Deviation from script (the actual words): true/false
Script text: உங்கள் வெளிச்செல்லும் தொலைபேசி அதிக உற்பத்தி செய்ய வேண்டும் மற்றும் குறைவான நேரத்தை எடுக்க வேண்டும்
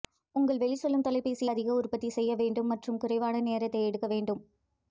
false